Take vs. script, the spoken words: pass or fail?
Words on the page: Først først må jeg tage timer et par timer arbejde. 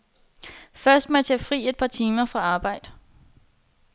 fail